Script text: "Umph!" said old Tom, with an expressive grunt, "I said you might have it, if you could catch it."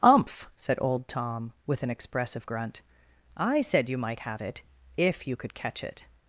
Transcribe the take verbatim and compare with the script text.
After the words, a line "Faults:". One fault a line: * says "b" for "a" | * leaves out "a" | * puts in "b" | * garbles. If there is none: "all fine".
"Umph!" said old Tom, with an expressive grunt, "I said you might have it, if you could catch it."
Faults:
all fine